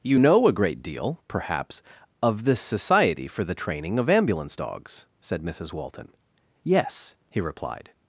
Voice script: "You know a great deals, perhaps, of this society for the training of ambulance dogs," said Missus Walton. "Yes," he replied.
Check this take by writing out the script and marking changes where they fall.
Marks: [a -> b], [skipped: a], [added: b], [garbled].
"You know a great [deals, -> deal] perhaps, of this society for the training of ambulance dogs," said Missus Walton. "Yes," he replied.